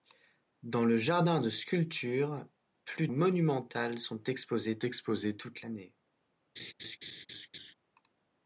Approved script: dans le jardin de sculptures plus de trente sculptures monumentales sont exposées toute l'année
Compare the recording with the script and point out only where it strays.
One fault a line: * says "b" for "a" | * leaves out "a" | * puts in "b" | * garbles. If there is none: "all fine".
* leaves out "de trente sculptures"
* puts in "exposées"